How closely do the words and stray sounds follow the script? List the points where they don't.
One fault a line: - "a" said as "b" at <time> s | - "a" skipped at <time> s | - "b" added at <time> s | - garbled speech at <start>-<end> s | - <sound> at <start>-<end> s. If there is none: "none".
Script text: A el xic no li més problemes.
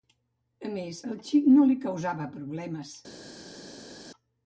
- "més" added at 0.8 s
- "més" said as "causava" at 1.9 s